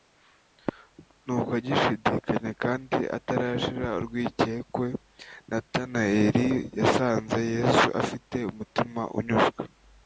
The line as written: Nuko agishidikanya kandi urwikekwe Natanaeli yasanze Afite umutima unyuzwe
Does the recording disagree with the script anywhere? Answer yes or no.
yes